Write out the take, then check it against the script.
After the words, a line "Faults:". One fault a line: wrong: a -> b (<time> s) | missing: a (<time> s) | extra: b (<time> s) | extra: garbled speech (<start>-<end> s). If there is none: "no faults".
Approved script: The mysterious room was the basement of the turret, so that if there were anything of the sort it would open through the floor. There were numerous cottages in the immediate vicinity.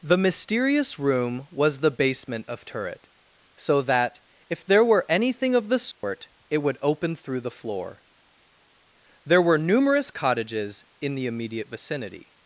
The mysterious room was the basement of turret, so that if there were anything of the sort it would open through the floor. There were numerous cottages in the immediate vicinity.
Faults:
missing: the (2.6 s)